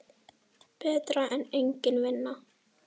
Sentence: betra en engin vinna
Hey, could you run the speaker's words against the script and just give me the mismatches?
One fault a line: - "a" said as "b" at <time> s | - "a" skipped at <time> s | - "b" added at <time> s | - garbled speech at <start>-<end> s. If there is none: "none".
none